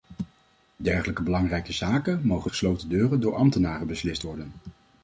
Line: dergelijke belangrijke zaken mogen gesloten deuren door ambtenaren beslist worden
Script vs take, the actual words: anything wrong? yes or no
no